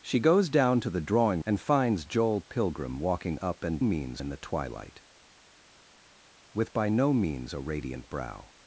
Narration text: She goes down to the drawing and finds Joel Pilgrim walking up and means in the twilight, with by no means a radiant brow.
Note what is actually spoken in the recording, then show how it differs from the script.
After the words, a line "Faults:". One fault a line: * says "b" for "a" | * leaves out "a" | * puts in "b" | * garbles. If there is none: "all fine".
She goes down to the drawing and finds Joel Pilgrim walking up and means in the twilight, with by no means a radiant brow.
Faults:
all fine